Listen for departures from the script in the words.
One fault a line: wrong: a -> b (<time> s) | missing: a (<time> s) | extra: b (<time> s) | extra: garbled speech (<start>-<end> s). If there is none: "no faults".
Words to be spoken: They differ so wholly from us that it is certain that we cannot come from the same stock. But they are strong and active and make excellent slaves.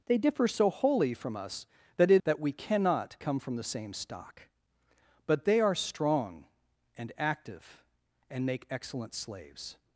missing: is certain (2.2 s)